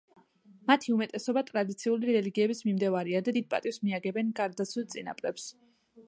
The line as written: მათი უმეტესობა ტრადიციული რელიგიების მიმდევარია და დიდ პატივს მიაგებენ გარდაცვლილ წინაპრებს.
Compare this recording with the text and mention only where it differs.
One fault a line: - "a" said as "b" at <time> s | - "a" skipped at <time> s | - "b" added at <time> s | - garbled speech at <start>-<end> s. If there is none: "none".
none